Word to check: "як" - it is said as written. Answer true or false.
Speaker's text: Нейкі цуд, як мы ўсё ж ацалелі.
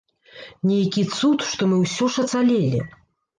false